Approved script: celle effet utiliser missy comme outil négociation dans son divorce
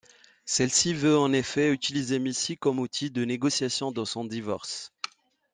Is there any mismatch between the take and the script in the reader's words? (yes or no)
yes